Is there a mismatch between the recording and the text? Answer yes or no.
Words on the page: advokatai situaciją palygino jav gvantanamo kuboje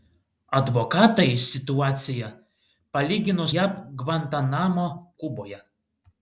no